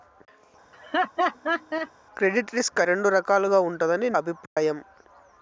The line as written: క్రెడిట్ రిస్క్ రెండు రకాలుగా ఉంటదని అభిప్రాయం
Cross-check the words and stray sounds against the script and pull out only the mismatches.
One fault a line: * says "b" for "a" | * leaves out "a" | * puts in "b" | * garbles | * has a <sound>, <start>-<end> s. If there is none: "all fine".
* has a laugh, 0.7-1.9 s
* has a dropout, 4.5-4.6 s